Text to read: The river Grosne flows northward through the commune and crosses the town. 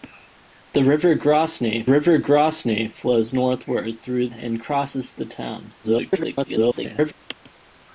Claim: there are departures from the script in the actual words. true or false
true